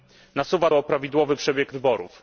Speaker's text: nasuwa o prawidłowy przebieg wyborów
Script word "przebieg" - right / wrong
right